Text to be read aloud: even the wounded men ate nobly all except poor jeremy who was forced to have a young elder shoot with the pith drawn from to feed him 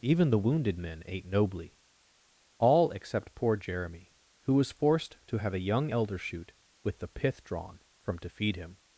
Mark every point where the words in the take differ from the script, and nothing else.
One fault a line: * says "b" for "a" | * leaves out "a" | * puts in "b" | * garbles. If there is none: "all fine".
all fine